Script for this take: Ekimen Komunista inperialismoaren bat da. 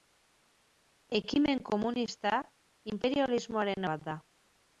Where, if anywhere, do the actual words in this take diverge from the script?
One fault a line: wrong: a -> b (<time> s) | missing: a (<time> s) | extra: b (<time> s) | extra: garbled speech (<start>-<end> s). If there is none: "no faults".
no faults